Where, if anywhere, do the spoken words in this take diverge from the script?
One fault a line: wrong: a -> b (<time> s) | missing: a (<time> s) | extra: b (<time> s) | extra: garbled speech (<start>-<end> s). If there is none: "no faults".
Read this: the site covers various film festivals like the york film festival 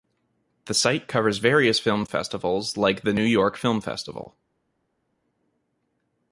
extra: new (3.1 s)